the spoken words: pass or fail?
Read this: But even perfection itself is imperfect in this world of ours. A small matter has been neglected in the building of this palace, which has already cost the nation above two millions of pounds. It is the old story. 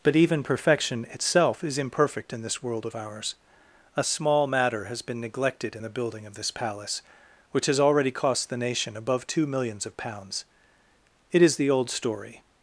pass